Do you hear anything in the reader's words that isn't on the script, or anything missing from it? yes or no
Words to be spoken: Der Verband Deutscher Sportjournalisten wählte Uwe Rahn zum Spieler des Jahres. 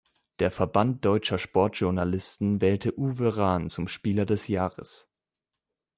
no